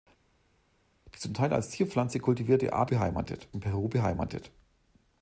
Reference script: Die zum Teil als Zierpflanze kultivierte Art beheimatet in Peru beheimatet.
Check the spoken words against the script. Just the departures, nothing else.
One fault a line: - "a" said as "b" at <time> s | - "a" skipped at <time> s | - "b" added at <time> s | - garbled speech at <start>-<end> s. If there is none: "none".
none